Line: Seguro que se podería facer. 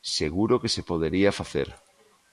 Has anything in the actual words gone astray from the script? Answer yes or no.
no